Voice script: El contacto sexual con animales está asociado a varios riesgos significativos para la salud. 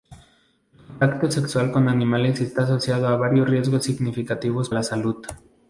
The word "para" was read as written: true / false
false